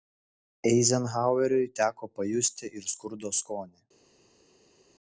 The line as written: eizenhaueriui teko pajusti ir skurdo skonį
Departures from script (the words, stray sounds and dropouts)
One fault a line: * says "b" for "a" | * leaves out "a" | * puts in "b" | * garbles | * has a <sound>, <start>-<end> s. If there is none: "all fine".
all fine